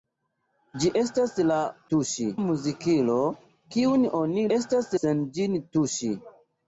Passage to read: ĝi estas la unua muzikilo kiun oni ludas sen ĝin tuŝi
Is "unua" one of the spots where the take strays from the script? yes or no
yes